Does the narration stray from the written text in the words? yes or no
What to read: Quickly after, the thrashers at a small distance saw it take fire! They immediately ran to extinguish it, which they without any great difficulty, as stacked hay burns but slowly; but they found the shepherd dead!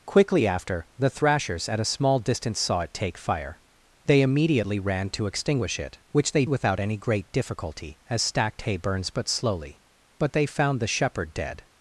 no